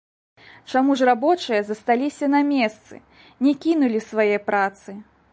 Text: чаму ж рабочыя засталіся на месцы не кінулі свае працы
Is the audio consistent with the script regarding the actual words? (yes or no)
yes